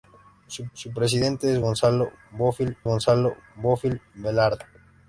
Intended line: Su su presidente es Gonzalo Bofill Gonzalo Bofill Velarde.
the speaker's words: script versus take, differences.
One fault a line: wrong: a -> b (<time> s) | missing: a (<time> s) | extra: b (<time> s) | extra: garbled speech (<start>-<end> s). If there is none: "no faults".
no faults